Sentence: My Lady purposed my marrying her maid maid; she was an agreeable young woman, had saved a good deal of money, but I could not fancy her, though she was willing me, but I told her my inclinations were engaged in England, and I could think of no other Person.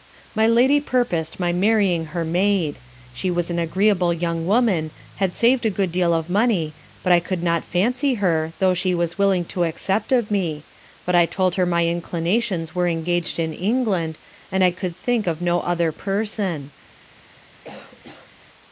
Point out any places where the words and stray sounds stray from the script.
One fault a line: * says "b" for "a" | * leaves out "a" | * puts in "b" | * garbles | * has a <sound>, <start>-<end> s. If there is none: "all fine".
* leaves out "maid"
* puts in "to accept of"
* has a cough, 17.6-18.3 s